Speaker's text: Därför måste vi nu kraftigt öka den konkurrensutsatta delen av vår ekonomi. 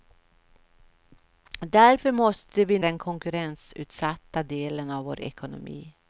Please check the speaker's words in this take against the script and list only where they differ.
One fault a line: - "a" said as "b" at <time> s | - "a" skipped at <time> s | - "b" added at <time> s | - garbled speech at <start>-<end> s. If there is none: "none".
- "nu kraftigt öka" skipped at 2.8 s